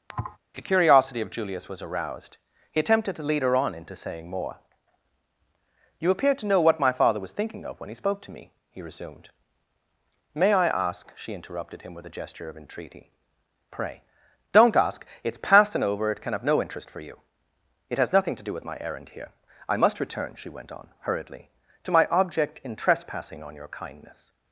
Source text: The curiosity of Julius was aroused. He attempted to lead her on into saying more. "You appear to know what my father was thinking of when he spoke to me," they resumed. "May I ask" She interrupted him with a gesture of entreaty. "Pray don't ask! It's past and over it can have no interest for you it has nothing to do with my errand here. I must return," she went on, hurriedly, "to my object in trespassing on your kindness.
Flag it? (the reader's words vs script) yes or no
yes